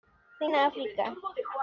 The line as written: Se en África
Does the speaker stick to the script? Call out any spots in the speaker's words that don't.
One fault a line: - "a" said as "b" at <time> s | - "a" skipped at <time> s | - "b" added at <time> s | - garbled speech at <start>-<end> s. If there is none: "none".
none